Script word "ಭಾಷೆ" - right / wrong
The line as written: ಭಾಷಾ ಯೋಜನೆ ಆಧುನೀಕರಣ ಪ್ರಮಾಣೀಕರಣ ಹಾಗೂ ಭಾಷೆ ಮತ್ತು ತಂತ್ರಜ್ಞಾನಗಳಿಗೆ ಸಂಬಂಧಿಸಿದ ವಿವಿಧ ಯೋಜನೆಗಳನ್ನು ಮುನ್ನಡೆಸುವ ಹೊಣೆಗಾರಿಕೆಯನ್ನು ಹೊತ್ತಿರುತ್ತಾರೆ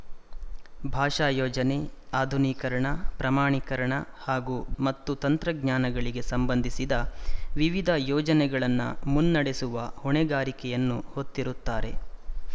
wrong